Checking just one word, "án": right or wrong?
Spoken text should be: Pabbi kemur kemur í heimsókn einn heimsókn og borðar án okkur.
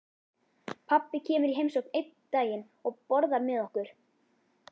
wrong